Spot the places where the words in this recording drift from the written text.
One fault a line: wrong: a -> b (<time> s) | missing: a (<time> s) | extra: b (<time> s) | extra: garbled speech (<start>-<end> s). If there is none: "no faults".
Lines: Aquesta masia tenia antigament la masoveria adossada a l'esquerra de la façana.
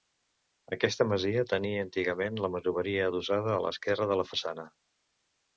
no faults